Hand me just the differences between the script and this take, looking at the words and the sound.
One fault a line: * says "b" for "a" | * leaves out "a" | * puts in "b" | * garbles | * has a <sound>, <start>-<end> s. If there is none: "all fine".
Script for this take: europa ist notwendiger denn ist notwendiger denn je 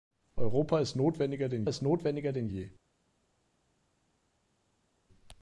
all fine